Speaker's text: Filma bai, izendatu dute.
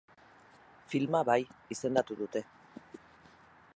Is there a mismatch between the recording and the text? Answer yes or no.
no